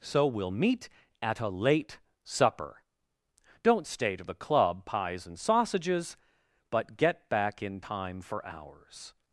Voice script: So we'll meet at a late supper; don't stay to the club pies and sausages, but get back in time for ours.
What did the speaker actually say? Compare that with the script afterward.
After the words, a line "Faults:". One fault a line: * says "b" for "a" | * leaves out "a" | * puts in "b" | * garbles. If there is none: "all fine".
So we'll meet at a late supper; don't stay to the club pies and sausages, but get back in time for ours.
Faults:
all fine